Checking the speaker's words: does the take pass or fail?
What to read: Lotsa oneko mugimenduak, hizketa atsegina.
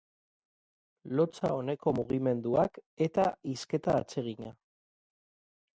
fail